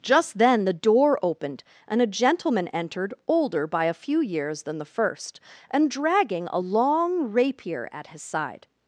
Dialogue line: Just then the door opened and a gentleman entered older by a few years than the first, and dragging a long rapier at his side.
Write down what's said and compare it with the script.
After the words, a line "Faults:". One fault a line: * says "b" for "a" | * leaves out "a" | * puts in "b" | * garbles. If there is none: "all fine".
Just then the door opened and a gentleman entered older by a few years than the first, and dragging a long rapier at his side.
Faults:
all fine